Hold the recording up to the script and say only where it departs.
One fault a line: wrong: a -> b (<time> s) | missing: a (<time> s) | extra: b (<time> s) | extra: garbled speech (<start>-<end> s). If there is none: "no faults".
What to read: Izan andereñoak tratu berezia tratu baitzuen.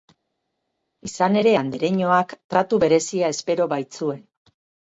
extra: ere (1.4 s)
wrong: tratu -> espero (3.4 s)